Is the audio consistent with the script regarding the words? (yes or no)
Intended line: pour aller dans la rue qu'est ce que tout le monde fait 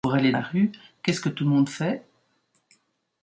no